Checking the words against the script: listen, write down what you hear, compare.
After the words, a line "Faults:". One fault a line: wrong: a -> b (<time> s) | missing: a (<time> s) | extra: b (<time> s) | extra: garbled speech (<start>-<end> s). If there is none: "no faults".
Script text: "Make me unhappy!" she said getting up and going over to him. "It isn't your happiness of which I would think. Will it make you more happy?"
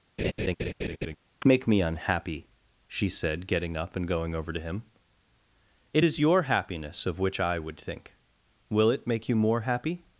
"Make me unhappy!" she said getting up and going over to him. "It is your happiness of which I would think. Will it make you more happy?"
Faults:
wrong: isn't -> is (6.0 s)